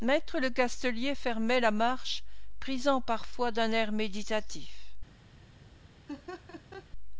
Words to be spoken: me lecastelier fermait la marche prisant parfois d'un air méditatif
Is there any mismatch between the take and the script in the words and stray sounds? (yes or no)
yes